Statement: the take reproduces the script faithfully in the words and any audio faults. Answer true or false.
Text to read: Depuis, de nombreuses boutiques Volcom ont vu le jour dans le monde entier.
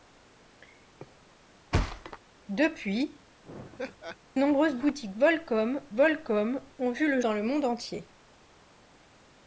false